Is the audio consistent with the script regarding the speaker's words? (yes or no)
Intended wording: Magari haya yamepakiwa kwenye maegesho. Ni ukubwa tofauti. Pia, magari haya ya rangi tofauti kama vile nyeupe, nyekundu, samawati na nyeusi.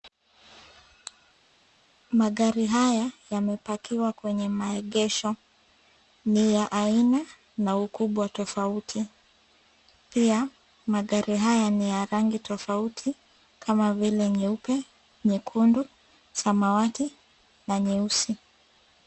no